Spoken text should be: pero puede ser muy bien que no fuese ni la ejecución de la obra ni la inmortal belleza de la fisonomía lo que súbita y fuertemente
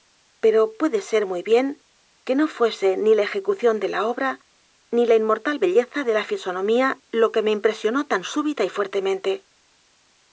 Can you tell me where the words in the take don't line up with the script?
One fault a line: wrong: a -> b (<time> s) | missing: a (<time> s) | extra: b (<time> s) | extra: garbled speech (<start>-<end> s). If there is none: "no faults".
extra: me impresionó tan (7.4 s)